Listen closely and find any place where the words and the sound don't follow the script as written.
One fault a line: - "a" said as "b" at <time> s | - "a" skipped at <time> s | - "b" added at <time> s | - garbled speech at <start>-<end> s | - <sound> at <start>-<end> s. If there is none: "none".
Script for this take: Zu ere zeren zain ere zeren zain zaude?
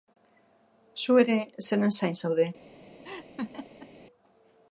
- "ere zeren zain" skipped at 2.1 s
- laugh at 3.0-3.9 s